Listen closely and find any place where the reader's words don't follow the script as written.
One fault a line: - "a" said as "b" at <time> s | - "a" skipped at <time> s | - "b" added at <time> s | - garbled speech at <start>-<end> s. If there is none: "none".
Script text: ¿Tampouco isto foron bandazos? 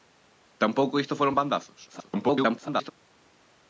- garbled speech at 1.9-2.9 s